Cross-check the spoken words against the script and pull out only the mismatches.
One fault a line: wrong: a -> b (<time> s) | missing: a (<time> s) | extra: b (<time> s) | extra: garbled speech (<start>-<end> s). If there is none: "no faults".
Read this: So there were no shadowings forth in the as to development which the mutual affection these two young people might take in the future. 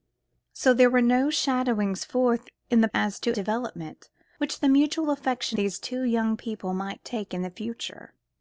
no faults